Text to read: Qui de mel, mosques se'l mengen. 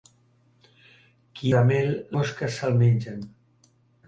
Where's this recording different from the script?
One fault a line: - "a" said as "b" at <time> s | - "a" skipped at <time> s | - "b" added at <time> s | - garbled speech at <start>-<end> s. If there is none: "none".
none